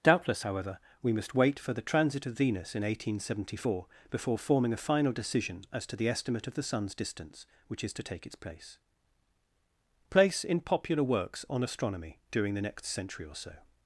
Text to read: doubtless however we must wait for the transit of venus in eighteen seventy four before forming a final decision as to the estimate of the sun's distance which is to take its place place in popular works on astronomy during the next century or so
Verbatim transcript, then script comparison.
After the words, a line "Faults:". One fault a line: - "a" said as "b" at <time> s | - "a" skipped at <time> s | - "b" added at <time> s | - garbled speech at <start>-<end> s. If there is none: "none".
doubtless however we must wait for the transit of venus in eighteen seventy four before forming a final decision as to the estimate of the sun's distance which is to take its place place in popular works on astronomy during the next century or so
Faults:
none